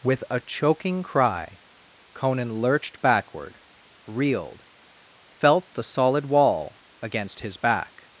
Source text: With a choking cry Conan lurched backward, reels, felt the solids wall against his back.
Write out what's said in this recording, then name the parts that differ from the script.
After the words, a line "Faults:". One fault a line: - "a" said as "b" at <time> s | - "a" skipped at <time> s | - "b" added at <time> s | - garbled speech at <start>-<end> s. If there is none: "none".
With a choking cry Conan lurched backward, reeled, felt the solid wall against his back.
Faults:
- "reels" said as "reeled" at 4.1 s
- "solids" said as "solid" at 5.8 s